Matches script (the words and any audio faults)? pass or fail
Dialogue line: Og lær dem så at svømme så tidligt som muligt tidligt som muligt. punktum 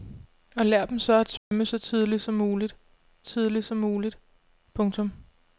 fail